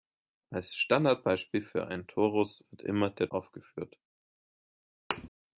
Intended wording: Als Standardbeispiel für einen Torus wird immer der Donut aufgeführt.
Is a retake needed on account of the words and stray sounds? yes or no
yes